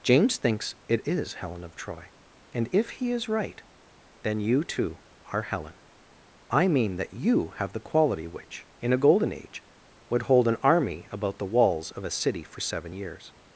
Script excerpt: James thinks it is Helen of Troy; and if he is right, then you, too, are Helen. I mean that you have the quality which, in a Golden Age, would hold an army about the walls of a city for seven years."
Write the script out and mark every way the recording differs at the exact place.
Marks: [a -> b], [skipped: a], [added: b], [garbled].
James thinks it is Helen of Troy; and if he is right, then you, too, are Helen. I mean that you have the quality which, in a Golden Age, would hold an army about the walls of a city for seven years."